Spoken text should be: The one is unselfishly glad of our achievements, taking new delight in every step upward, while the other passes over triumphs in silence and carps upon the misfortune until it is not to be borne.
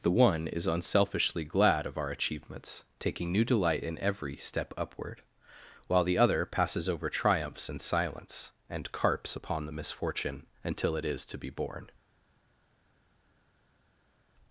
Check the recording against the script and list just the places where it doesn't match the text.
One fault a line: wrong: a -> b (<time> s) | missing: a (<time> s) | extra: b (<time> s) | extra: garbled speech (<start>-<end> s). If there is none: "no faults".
missing: not (11.3 s)